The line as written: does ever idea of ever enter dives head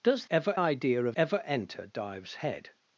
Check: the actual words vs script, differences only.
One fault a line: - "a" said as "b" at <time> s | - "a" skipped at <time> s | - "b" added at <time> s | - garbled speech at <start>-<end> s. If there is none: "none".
none